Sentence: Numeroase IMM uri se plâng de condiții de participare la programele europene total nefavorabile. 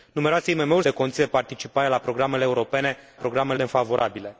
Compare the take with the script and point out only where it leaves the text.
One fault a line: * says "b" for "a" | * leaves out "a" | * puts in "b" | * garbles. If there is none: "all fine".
* leaves out "se plâng"
* says "programele" for "total"